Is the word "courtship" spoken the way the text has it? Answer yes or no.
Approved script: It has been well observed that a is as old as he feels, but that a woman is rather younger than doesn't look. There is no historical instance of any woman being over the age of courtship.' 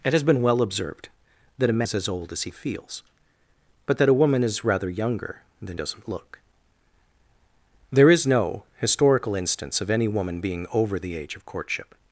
yes